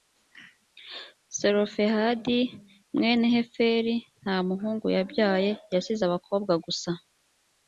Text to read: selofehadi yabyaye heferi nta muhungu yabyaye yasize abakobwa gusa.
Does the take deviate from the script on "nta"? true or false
false